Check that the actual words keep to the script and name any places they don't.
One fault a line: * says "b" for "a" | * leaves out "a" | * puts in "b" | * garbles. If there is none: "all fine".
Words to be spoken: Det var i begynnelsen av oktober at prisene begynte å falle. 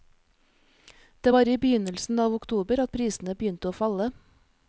all fine